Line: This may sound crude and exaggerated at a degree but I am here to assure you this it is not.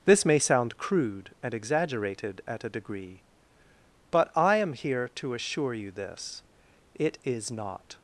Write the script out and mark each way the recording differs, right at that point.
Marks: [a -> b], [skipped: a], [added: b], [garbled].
This may sound crude and exaggerated at a degree but I am here to assure you this it is not.